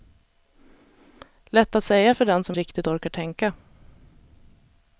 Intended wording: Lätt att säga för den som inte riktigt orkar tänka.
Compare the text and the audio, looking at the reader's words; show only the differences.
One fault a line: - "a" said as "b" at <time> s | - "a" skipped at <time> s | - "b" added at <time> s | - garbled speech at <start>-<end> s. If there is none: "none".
- "inte" skipped at 2.6 s